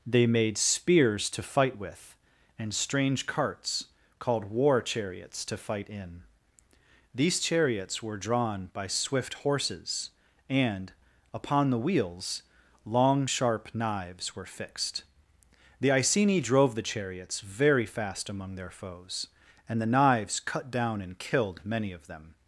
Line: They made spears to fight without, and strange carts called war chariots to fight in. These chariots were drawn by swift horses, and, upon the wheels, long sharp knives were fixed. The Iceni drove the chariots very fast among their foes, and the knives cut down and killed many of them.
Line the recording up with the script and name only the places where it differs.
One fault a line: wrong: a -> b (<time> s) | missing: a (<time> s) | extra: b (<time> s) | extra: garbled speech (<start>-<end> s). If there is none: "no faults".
wrong: without -> with (1.8 s)